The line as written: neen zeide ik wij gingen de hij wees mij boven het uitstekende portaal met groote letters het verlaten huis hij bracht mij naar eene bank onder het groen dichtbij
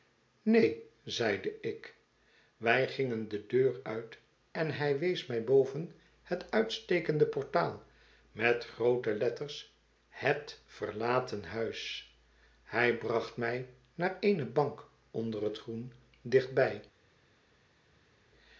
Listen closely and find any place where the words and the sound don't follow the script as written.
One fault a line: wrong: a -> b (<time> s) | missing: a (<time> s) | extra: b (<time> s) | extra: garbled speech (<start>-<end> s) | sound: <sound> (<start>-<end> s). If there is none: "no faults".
extra: deur uit en (3.5 s)